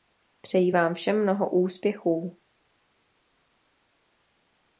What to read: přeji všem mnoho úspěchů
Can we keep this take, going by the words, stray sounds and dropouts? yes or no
no